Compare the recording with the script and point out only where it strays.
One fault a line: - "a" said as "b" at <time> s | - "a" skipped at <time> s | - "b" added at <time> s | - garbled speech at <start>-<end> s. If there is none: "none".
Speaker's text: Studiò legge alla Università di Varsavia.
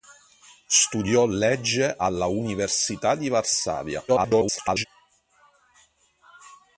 - garbled speech at 4.1-4.9 s